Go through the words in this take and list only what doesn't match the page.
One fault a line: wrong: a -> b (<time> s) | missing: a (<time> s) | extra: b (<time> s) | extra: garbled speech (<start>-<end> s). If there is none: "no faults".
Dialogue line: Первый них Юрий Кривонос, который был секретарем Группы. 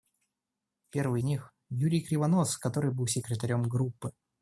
no faults